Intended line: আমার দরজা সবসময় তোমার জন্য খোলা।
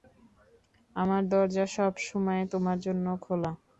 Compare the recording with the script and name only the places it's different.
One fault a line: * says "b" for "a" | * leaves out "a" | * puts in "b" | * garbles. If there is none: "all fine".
all fine